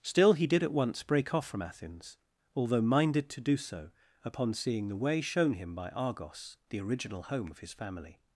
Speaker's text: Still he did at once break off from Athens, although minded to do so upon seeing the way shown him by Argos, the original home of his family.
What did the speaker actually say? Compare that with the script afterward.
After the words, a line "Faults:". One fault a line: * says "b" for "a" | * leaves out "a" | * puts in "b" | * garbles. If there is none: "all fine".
Still he did at once break off from Athens, although minded to do so upon seeing the way shown him by Argos, the original home of his family.
Faults:
all fine